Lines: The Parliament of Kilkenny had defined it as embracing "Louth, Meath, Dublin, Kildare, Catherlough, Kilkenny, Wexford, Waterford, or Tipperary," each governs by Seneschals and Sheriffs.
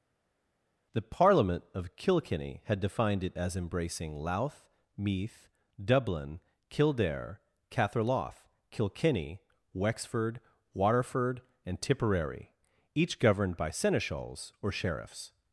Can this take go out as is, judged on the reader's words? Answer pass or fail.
fail